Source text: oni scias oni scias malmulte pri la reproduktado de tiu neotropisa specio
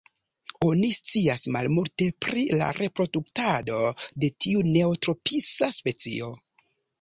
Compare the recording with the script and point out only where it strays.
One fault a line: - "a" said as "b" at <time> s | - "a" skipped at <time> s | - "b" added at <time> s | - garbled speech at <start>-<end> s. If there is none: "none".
- "oni scias" skipped at 1.4 s